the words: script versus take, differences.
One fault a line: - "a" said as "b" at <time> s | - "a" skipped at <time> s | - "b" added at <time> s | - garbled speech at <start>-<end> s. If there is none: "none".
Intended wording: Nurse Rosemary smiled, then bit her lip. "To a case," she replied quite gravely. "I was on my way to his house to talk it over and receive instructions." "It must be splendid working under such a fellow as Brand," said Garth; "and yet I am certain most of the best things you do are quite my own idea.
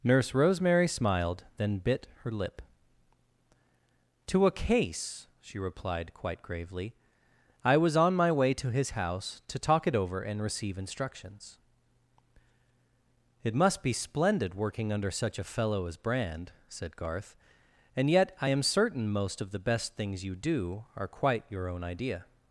- "my" said as "your" at 21.5 s